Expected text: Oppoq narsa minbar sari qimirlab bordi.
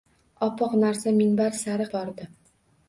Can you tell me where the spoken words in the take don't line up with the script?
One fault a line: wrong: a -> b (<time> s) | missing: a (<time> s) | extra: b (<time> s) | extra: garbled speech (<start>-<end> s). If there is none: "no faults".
missing: qimirlab (1.9 s)